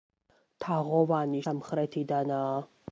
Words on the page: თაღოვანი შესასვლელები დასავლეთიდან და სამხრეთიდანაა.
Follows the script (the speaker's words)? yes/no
no